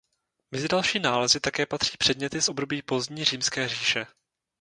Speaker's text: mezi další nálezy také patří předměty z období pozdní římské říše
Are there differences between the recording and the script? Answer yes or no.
no